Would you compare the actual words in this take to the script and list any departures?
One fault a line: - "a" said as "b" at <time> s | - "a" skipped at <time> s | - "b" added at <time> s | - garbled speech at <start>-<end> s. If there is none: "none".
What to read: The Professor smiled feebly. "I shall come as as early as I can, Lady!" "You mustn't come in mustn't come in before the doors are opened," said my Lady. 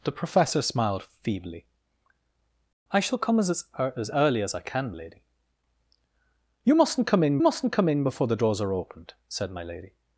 none